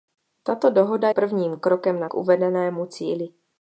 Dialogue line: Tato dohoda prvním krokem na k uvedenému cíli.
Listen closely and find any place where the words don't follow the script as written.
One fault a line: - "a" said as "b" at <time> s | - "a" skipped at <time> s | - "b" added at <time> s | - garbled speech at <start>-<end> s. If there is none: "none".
none